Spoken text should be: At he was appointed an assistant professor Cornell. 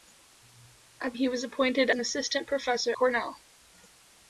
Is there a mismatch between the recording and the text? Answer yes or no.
no